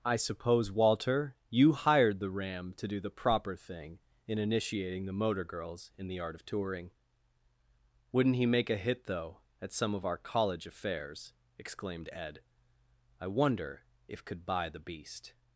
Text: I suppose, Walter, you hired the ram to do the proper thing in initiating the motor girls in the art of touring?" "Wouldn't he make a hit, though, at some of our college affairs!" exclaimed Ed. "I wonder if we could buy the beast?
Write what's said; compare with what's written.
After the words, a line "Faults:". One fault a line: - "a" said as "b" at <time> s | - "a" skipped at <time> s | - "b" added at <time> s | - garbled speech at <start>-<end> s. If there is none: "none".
I suppose, Walter, you hired the ram to do the proper thing in initiating the motor girls in the art of touring?" "Wouldn't he make a hit, though, at some of our college affairs!" exclaimed Ed. "I wonder if could buy the beast?
Faults:
- "we" skipped at 14.2 s